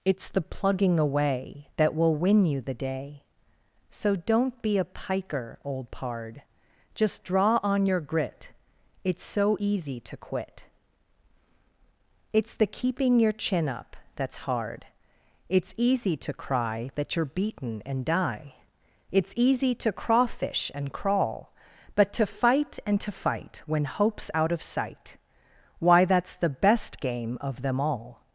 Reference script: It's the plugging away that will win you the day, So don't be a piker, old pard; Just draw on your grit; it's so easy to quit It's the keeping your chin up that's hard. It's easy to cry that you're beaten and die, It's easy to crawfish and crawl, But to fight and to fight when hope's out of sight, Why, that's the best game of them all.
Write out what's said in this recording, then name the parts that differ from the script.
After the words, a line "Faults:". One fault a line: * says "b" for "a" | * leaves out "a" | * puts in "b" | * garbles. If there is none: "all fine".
It's the plugging away that will win you the day, So don't be a piker, old pard; Just draw on your grit; it's so easy to quit It's the keeping your chin up that's hard. It's easy to cry that you're beaten and die, It's easy to crawfish and crawl, But to fight and to fight when hope's out of sight, Why, that's the best game of them all.
Faults:
all fine